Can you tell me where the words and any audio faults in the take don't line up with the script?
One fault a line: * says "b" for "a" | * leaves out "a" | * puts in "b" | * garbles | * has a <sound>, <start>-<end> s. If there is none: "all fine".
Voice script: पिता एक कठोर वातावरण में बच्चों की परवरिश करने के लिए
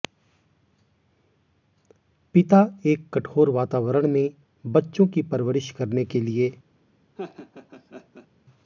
* has a laugh, 7.2-8.3 s